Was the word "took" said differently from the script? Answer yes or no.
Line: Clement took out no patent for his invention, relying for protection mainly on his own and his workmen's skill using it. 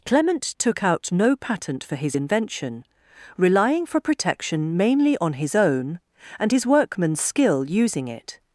no